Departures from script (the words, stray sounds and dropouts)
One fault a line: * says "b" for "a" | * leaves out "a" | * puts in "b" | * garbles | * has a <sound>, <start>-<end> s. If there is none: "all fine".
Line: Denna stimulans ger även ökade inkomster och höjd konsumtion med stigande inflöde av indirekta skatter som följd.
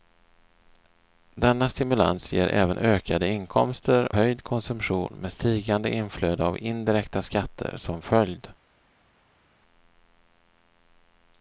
* leaves out "och"